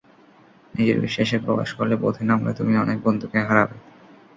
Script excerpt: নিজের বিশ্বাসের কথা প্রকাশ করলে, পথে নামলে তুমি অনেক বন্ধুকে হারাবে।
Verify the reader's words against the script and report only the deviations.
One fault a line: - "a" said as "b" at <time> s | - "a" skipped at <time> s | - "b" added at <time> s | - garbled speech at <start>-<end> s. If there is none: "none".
- "কথা" skipped at 1.4 s